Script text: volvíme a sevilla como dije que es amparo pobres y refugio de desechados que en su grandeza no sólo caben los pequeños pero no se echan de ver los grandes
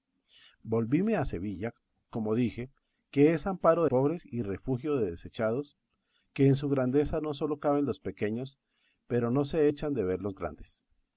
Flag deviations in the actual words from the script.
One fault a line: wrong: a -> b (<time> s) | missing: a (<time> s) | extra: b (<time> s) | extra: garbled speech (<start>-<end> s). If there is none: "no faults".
no faults